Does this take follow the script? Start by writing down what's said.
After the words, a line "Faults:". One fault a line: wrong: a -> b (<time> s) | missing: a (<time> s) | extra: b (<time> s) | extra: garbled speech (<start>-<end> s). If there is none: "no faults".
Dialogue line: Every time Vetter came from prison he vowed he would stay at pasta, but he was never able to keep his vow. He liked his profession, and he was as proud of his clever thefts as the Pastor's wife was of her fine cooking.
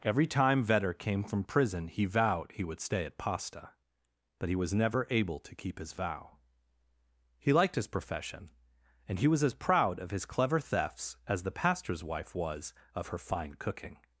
Every time Vetter came from prison he vowed he would stay at pasta, but he was never able to keep his vow. He liked his profession, and he was as proud of his clever thefts as the Pastor's wife was of her fine cooking.
Faults:
no faults